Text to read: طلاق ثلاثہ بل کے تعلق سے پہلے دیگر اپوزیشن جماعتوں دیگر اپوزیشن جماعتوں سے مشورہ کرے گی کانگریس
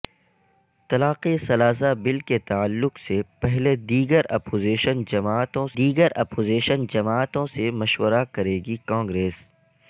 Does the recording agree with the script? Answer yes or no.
yes